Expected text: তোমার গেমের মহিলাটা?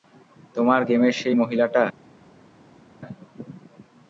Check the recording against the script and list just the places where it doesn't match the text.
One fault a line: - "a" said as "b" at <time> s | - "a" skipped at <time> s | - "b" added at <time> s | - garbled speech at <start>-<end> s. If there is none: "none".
- "সেই" added at 1.1 s